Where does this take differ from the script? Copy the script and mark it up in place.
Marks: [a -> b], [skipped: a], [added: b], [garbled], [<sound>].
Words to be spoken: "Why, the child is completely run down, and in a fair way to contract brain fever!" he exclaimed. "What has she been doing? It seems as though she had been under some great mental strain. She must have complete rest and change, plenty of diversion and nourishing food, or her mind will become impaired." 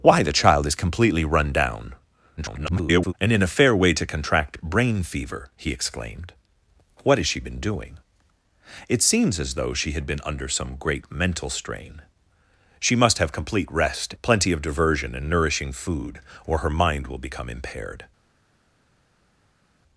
"Why, the child is completely run down, [garbled] and in a fair way to contract brain fever!" he exclaimed. "What has she been doing? It seems as though she had been under some great mental strain. She must have complete rest [skipped: and change,] plenty of diversion and nourishing food, or her mind will become impaired."